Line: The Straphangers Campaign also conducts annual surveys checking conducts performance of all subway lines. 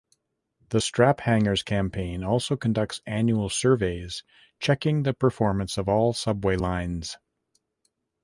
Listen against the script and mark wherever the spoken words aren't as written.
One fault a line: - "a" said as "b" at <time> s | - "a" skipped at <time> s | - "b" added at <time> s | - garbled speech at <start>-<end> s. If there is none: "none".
- "conducts" said as "the" at 5.0 s